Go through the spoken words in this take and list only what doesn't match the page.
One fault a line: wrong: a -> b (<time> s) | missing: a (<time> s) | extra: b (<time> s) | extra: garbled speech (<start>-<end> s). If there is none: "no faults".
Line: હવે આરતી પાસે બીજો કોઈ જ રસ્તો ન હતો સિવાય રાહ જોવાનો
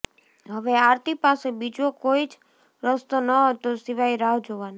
no faults